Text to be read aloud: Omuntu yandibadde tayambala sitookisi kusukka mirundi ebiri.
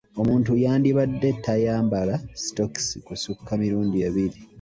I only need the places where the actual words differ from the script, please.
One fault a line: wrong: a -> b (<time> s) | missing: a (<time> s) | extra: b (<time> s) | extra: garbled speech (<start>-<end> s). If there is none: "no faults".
no faults